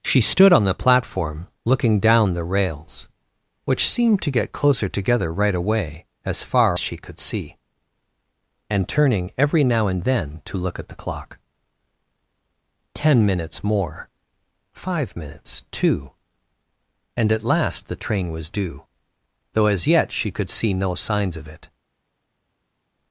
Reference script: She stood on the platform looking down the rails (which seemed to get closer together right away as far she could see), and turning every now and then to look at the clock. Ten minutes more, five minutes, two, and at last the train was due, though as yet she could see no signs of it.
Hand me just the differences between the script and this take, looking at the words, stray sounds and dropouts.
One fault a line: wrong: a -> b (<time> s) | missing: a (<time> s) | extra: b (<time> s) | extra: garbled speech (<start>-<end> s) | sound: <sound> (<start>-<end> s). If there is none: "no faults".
no faults